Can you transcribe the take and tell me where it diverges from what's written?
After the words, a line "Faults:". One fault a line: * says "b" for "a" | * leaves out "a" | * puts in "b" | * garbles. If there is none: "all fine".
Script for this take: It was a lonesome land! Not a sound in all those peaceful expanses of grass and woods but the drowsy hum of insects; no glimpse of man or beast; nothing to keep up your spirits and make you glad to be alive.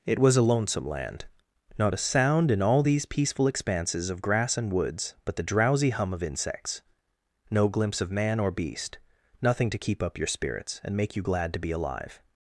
It was a lonesome land! Not a sound in all these peaceful expanses of grass and woods but the drowsy hum of insects; no glimpse of man or beast; nothing to keep up your spirits and make you glad to be alive.
Faults:
* says "these" for "those"